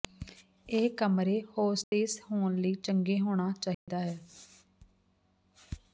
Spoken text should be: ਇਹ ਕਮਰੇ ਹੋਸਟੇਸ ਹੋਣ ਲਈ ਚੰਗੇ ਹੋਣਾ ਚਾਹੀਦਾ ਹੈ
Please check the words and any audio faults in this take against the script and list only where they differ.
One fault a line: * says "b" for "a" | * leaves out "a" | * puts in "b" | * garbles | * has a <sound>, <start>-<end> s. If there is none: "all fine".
* has a dropout, 1.8-1.9 s
* has a dropout, 3.7-3.9 s